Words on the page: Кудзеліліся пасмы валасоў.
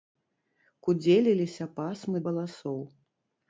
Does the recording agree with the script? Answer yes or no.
yes